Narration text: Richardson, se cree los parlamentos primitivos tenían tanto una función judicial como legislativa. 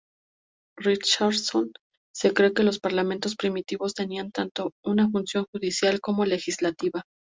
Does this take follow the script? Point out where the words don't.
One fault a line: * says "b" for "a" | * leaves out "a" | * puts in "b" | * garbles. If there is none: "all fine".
* puts in "que"